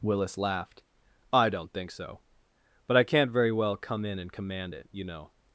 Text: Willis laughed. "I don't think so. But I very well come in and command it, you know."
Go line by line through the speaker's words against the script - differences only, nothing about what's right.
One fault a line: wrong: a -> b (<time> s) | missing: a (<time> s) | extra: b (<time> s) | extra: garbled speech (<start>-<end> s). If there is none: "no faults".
extra: can't (3.0 s)